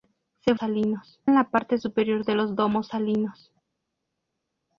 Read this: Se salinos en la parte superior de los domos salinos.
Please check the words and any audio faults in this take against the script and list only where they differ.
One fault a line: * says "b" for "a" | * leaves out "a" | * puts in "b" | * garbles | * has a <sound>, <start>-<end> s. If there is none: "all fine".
all fine